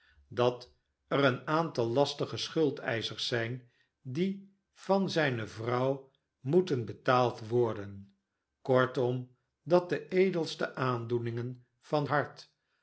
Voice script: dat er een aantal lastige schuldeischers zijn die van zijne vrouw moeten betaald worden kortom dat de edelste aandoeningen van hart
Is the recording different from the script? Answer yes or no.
no